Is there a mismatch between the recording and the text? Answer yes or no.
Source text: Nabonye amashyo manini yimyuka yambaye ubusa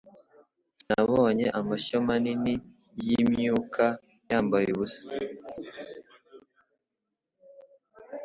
no